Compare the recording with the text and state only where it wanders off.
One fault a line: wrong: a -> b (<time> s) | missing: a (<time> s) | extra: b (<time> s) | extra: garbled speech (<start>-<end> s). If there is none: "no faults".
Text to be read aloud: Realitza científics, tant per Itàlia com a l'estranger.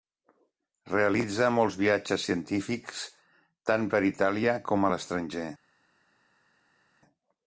extra: molts viatges (1.6 s)